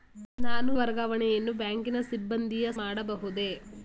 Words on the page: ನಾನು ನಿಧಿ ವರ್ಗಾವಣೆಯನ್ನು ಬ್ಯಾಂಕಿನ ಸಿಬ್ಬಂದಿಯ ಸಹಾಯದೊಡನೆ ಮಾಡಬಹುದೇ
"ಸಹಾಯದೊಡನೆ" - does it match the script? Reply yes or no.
no